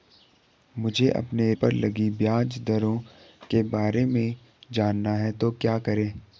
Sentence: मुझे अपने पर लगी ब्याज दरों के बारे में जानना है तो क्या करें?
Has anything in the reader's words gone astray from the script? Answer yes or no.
no